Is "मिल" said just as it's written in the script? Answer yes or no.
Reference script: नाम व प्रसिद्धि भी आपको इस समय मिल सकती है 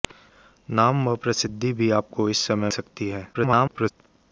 no